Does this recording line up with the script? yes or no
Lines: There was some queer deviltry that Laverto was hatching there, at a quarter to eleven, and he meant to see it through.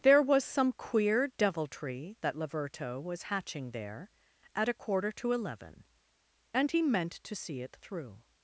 yes